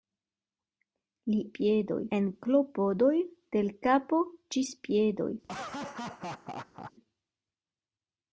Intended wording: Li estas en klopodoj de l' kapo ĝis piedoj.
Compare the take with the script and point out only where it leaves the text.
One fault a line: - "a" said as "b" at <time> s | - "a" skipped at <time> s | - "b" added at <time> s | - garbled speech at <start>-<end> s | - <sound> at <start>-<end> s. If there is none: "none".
- "estas" said as "piedoj" at 1.6 s
- laugh at 5.4-6.9 s